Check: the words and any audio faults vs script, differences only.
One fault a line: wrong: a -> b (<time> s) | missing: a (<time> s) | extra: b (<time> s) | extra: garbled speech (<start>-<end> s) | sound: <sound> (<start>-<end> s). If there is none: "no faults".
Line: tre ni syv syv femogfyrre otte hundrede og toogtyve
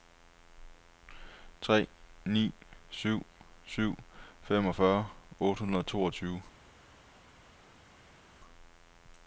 no faults